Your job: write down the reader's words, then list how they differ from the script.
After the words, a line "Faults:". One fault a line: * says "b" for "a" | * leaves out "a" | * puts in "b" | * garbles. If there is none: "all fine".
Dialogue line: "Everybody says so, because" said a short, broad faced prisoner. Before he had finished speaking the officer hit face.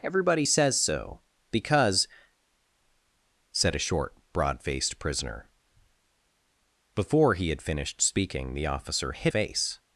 "Everybody says so, because" said a short, broad faced prisoner. Before he had finished speaking the officer hit face.
Faults:
all fine